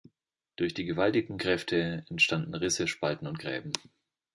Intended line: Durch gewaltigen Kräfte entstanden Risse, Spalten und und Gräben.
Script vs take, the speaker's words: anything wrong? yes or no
yes